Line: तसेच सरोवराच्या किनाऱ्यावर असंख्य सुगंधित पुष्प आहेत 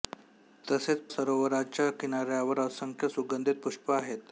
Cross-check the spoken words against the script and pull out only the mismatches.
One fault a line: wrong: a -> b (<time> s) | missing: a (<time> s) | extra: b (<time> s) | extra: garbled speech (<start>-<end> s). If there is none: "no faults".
no faults